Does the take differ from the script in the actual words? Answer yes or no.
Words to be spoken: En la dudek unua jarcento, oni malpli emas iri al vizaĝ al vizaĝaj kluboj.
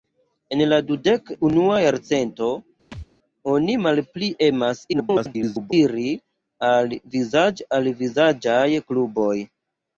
yes